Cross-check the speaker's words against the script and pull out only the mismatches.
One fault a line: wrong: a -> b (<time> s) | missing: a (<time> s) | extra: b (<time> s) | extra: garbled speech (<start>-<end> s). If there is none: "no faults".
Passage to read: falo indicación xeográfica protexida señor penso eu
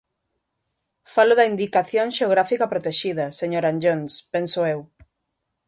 extra: da (1.4 s)
extra: anllóns (3.6 s)